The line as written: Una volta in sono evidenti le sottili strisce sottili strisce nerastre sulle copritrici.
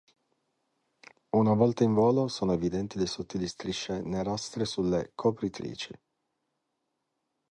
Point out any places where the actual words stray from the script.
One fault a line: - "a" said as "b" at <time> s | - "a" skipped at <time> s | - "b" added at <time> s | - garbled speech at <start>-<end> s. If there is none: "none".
- "volo" added at 1.9 s
- "sottili strisce" skipped at 4.0 s